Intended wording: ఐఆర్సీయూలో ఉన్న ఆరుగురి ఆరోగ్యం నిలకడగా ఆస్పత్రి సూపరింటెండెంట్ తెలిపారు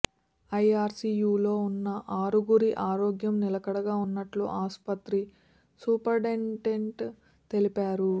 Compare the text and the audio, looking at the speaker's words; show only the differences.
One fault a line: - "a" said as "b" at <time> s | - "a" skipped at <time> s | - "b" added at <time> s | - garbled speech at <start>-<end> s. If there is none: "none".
- "ఉన్నట్లు" added at 4.0 s